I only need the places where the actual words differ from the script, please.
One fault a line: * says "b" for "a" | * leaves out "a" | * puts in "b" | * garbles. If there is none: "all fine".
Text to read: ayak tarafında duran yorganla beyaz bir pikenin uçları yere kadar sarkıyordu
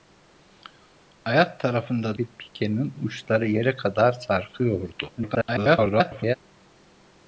* leaves out "duran yorganla beyaz"
* garbles